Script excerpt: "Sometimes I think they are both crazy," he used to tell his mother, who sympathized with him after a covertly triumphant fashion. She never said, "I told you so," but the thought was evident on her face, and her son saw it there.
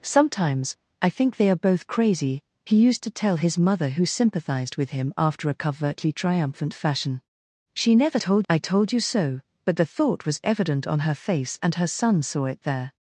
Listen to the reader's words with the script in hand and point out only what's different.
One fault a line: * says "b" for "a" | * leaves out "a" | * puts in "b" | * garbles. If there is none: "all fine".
* says "told" for "said"